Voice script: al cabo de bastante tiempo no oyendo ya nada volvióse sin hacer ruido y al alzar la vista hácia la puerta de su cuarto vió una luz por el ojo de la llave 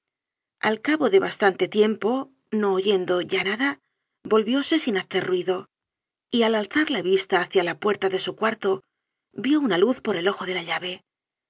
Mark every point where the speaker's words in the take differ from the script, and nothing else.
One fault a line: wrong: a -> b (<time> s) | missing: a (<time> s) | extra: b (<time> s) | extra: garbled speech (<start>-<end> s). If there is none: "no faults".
no faults